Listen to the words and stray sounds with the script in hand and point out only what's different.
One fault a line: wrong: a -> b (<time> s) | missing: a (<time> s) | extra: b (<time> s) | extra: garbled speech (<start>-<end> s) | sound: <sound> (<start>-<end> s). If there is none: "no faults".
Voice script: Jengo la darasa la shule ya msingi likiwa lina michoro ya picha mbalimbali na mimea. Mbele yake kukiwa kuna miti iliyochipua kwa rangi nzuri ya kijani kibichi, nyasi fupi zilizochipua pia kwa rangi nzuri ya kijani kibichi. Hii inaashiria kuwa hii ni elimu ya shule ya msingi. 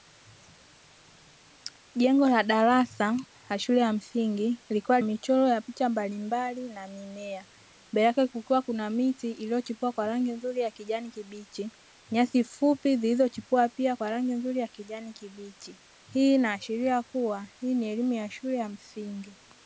missing: lina (5.0 s)